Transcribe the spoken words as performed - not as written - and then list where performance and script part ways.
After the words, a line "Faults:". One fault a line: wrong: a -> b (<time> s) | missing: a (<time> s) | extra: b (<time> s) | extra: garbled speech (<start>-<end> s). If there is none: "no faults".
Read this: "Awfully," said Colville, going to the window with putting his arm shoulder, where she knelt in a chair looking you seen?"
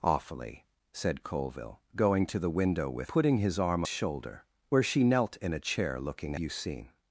"Awfully," said Colville, going to the window with putting his arm shoulder, where she knelt in a chair looking you seen?"
Faults:
no faults